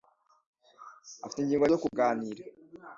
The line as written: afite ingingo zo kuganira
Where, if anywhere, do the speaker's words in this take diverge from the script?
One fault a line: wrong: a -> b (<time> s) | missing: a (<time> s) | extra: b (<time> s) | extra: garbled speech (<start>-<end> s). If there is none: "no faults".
no faults